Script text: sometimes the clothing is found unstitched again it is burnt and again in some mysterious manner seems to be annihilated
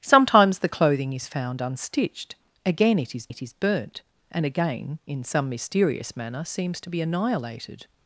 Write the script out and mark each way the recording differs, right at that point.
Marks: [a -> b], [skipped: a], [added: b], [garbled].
sometimes the clothing is found unstitched again it is [added: it is] burnt and again in some mysterious manner seems to be annihilated